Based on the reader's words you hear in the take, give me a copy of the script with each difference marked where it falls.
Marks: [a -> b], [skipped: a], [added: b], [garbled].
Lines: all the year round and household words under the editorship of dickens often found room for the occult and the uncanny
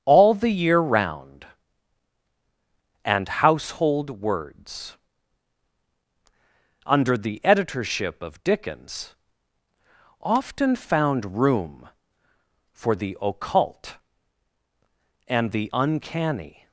all the year round and household words under the editorship of dickens often found room for the occult and the uncanny